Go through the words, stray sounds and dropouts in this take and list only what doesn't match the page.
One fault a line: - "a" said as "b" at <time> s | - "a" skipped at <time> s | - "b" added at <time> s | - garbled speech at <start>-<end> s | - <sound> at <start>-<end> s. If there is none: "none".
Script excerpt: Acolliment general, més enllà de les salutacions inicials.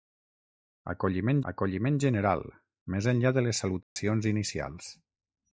- "acolliment" added at 1.5 s
- dropout at 3.8-4.0 s